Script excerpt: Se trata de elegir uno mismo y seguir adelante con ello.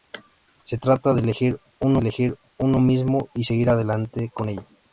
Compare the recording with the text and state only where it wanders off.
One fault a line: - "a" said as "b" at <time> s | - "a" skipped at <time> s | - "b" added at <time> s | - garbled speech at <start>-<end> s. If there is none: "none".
- "elegir uno" added at 2.0 s